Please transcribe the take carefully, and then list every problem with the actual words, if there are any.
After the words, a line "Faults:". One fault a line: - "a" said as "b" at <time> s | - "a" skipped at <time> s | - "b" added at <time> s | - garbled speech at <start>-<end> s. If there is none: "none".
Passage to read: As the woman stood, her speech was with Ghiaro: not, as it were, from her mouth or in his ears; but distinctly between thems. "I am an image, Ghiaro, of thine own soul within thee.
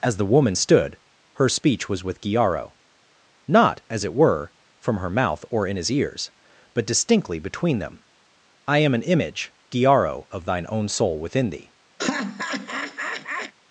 As the woman stood, her speech was with Ghiaro: not, as it were, from her mouth or in his ears; but distinctly between them. "I am an image, Ghiaro, of thine own soul within thee.
Faults:
- "thems" said as "them" at 7.8 s